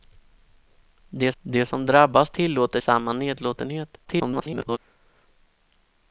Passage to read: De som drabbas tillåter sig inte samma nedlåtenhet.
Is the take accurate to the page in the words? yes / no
no